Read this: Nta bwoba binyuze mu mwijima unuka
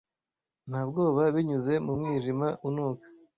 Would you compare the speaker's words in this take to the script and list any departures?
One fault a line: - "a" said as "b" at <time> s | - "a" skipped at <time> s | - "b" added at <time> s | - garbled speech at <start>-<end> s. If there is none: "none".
none